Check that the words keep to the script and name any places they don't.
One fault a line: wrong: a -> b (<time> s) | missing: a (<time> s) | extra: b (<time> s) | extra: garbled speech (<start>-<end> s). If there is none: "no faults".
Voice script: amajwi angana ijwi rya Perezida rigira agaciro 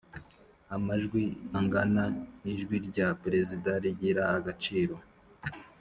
no faults